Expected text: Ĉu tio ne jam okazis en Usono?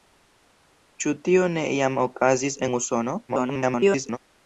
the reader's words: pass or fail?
fail